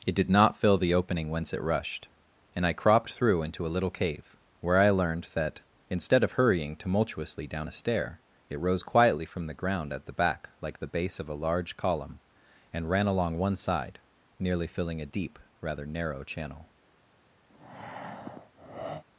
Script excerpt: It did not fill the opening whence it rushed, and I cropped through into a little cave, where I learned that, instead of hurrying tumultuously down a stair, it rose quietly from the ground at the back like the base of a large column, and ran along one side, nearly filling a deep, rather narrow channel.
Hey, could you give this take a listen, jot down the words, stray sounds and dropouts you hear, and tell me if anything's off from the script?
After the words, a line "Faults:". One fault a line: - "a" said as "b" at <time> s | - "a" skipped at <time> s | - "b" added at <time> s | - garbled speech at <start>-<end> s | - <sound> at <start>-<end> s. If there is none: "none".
It did not fill the opening whence it rushed, and I cropped through into a little cave, where I learned that, instead of hurrying tumultuously down a stair, it rose quietly from the ground at the back like the base of a large column, and ran along one side, nearly filling a deep, rather narrow channel.
Faults:
- breath at 17.5-19.0 s